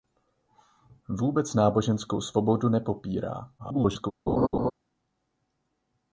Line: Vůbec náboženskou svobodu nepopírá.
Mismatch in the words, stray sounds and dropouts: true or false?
true